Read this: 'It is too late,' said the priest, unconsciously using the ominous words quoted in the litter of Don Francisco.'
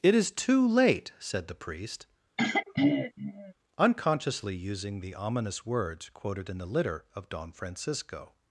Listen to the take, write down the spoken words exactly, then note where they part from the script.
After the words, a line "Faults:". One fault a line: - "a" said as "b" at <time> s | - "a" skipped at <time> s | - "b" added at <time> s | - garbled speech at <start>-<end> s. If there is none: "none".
'It is too late,' said the priest, unconsciously using the ominous words quoted in the litter of Don Francisco.'
Faults:
none